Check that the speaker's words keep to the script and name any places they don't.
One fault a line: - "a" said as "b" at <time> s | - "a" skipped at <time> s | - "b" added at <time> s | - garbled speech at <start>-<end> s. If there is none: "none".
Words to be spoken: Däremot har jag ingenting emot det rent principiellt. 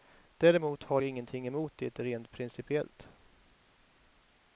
- "jag" skipped at 1.0 s